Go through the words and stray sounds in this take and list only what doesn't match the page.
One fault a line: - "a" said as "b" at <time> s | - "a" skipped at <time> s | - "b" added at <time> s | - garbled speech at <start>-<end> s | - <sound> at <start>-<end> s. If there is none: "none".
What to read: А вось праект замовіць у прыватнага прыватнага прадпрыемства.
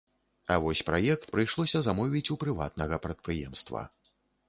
- "прыйшлося" added at 1.3 s
- "прыватнага" skipped at 3.0 s